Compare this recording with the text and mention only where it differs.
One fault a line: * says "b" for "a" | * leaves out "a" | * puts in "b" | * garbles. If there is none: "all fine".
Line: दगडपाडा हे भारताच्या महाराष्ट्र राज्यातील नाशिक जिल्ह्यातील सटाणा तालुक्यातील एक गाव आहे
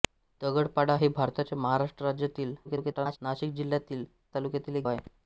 * garbles
* leaves out "सटाणा"
* leaves out "गाव"